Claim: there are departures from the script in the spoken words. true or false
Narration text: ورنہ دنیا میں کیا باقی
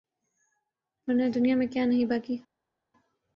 true